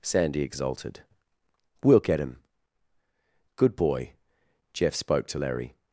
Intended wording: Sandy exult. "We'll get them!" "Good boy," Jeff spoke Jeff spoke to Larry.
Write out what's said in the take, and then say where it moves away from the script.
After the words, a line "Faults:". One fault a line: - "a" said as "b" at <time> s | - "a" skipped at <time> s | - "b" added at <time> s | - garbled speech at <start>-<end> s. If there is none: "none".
Sandy exulted. "We'll get him!" "Good boy," Jeff spoke to Larry.
Faults:
- "exult" said as "exulted" at 0.4 s
- "them" said as "him" at 2.2 s
- "Jeff spoke" skipped at 5.3 s